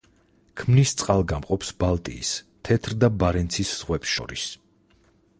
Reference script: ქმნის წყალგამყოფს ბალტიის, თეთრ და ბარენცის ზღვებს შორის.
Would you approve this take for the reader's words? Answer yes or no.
yes